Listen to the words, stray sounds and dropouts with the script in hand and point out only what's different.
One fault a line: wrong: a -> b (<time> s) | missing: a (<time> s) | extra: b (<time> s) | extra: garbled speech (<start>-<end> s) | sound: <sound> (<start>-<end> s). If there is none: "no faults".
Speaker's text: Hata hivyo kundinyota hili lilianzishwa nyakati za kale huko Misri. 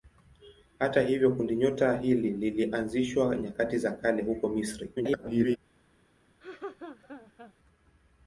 extra: garbled speech (5.0-5.6 s)
sound: laugh (6.4-7.5 s)